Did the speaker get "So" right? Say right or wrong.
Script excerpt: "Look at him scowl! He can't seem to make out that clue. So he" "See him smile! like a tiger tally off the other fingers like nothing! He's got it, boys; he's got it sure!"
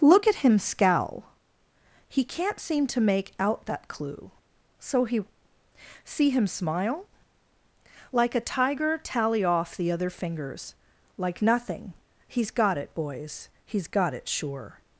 right